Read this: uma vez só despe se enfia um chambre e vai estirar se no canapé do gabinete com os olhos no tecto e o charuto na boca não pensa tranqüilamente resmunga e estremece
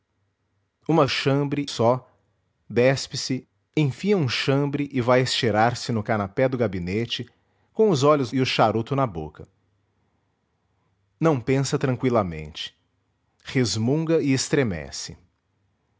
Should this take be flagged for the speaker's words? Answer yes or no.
yes